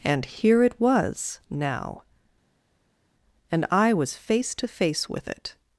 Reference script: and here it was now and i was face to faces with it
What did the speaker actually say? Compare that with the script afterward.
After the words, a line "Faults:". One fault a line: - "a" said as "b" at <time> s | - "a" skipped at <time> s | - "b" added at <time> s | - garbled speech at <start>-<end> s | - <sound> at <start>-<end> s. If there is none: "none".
and here it was now and i was face to face with it
Faults:
- "faces" said as "face" at 4.7 s